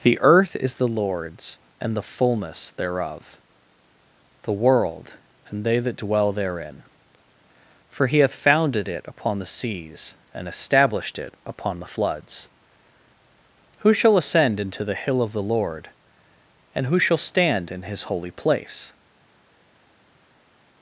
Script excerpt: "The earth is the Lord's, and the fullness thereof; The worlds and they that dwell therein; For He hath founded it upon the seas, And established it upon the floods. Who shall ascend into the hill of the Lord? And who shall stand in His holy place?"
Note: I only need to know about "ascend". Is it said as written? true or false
true